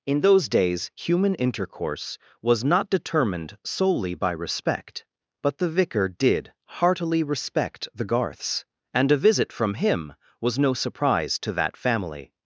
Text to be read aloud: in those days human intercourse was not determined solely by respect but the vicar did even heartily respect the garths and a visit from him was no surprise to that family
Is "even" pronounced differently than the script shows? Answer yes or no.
yes